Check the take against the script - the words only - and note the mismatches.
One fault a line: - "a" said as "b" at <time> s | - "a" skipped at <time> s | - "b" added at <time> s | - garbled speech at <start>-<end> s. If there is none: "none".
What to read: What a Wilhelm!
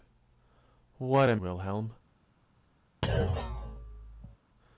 none